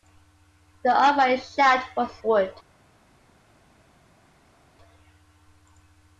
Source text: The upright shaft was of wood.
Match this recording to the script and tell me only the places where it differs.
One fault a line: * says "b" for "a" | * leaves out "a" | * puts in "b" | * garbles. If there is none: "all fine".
* leaves out "of"